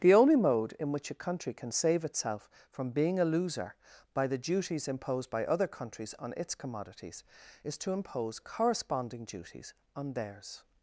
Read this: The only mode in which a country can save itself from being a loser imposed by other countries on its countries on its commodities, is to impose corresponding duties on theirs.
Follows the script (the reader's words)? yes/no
no